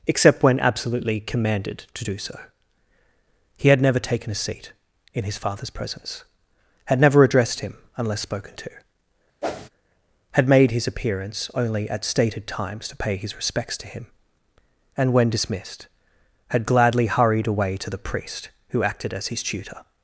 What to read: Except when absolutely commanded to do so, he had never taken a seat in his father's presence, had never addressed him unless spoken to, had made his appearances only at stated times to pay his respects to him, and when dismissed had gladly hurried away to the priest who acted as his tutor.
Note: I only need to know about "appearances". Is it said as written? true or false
false